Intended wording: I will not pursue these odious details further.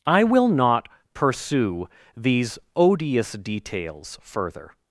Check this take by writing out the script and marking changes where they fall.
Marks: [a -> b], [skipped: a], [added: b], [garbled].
I will not pursue these odious details further.